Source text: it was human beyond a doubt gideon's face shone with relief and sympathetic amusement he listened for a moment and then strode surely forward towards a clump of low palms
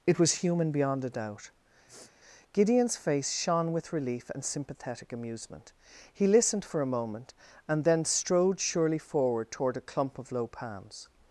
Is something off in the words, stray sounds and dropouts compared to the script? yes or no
yes